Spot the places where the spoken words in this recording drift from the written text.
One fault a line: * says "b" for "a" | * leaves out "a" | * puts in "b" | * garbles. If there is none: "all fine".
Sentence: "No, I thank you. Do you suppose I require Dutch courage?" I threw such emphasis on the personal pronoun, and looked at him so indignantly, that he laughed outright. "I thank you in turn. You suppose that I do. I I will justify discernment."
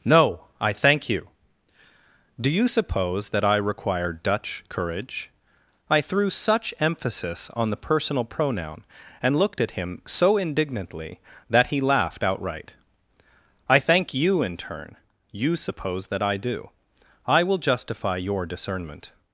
* puts in "that"
* leaves out "I"
* puts in "your"